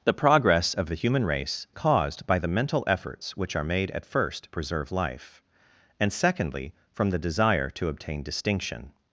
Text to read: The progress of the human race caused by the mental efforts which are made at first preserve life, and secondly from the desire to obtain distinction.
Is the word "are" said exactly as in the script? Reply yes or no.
yes